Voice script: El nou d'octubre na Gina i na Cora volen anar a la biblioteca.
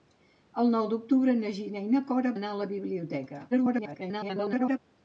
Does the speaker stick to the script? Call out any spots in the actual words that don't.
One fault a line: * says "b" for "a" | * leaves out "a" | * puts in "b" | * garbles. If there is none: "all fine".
* leaves out "volen"
* garbles